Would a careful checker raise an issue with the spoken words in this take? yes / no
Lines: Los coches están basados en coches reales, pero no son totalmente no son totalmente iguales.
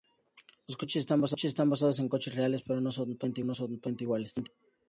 no